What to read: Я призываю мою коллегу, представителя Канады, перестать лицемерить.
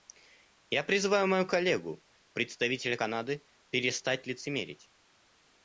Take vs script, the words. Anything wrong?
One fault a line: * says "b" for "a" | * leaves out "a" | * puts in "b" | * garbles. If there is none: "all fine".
all fine